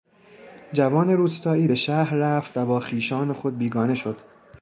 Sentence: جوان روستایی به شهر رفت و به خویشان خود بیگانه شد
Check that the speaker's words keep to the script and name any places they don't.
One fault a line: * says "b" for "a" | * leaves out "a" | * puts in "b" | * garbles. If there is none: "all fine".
* says "با" for "به"